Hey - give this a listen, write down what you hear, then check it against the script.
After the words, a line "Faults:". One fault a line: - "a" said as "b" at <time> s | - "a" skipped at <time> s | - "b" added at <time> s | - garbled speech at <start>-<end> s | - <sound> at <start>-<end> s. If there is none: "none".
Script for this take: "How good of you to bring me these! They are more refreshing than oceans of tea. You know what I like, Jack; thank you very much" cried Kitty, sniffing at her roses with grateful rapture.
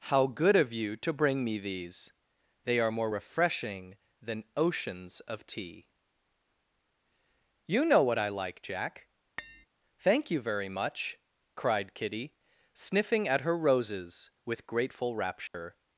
"How good of you to bring me these! They are more refreshing than oceans of tea. You know what I like, Jack; thank you very much" cried Kitty, sniffing at her roses with grateful rapture.
Faults:
- tap at 9.4-9.7 s
- dropout at 15.5-15.5 s